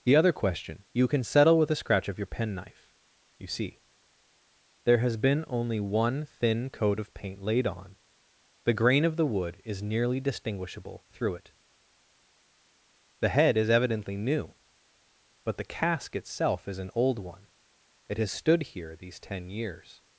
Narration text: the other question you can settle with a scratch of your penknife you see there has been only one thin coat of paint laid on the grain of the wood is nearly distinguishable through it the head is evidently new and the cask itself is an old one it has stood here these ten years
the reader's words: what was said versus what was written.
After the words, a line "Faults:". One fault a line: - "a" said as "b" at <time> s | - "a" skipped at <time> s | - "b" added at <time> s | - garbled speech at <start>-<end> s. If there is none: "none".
the other question you can settle with a scratch of your penknife you see there has been only one thin coat of paint laid on the grain of the wood is nearly distinguishable through it the head is evidently new but the cask itself is an old one it has stood here these ten years
Faults:
- "and" said as "but" at 15.4 s